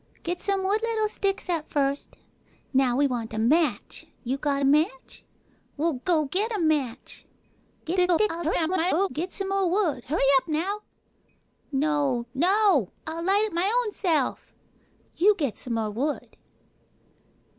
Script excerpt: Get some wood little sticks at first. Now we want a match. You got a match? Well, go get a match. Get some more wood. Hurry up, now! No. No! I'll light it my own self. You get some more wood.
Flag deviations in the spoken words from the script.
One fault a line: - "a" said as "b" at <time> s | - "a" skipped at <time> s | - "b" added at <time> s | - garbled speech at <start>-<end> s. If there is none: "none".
- garbled speech at 7.8-9.1 s